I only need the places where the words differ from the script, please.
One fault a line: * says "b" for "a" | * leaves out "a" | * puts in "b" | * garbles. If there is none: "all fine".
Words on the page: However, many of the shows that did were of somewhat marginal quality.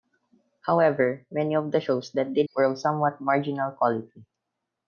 all fine